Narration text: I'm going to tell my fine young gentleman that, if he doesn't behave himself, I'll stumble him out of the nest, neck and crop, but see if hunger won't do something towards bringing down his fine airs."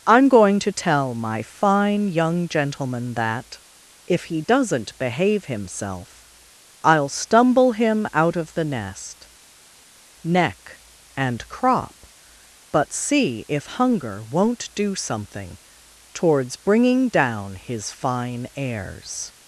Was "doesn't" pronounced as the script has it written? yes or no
yes